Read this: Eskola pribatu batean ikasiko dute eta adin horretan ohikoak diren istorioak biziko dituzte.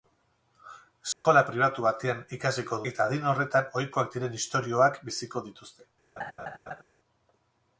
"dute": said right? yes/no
no